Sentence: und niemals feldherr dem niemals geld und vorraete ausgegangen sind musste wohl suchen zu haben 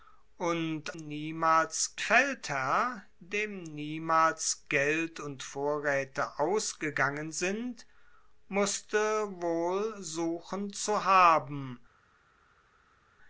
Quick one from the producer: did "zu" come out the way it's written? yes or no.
yes